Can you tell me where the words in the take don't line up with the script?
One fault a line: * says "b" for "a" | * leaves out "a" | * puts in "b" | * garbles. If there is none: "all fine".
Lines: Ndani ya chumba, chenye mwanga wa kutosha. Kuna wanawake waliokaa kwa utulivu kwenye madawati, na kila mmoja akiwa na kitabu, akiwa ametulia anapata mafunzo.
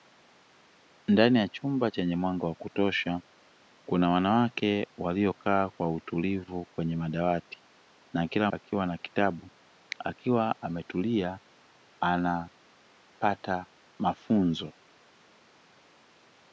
* leaves out "mmoja"